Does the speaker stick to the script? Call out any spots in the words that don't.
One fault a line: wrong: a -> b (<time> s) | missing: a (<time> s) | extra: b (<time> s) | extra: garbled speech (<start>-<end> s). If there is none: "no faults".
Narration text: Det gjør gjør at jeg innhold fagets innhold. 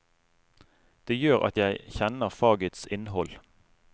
missing: gjør (1.4 s)
wrong: innhold -> kjenner (2.0 s)